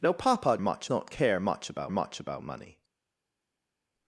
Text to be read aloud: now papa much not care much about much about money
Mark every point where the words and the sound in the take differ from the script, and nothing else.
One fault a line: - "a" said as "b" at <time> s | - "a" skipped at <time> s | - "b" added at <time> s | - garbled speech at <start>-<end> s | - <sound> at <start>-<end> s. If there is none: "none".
none